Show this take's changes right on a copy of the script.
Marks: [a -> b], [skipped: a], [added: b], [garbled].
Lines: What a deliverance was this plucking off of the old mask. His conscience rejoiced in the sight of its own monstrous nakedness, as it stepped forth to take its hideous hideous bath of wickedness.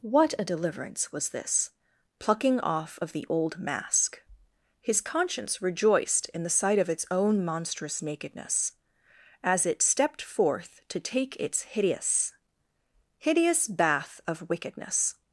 What a deliverance was this plucking off of the old mask. His conscience rejoiced in the sight of its own monstrous nakedness, as it stepped forth to take its hideous hideous bath of wickedness.